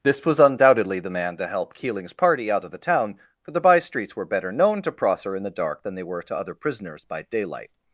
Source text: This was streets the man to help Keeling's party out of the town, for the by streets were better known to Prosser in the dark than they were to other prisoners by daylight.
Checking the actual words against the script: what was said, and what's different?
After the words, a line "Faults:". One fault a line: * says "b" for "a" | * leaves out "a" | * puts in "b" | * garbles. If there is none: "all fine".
This was undoubtedly the man to help Keeling's party out of the town, for the by streets were better known to Prosser in the dark than they were to other prisoners by daylight.
Faults:
* says "undoubtedly" for "streets"